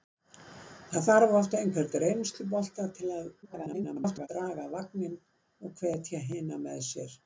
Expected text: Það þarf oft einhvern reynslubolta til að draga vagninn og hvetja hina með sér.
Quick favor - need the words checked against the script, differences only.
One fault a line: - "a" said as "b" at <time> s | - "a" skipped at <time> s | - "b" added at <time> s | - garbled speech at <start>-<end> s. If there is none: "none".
- garbled speech at 3.4-4.3 s